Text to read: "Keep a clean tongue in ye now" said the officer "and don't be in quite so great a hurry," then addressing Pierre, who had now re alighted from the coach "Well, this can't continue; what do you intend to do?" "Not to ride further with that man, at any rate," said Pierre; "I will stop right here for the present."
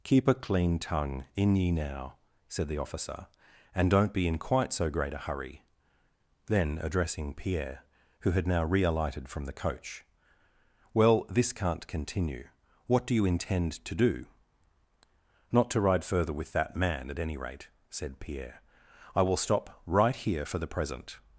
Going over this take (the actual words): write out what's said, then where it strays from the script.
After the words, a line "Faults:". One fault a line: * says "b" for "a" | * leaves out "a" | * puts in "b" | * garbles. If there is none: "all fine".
"Keep a clean tongue in ye now" said the officer "and don't be in quite so great a hurry," then addressing Pierre, who had now re alighted from the coach "Well, this can't continue; what do you intend to do?" "Not to ride further with that man, at any rate," said Pierre; "I will stop right here for the present."
Faults:
all fine